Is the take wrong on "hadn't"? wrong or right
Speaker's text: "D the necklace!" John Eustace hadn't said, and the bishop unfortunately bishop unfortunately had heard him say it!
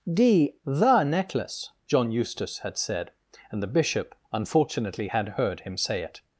wrong